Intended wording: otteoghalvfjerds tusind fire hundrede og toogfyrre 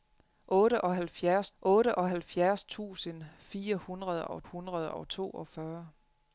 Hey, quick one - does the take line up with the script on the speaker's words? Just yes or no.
no